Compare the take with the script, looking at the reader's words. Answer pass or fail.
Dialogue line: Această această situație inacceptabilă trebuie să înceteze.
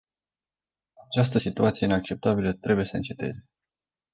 fail